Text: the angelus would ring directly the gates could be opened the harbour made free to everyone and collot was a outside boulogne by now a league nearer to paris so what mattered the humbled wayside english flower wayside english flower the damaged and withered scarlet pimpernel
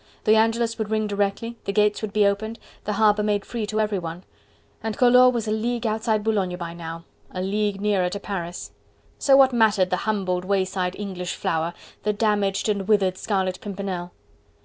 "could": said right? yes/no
no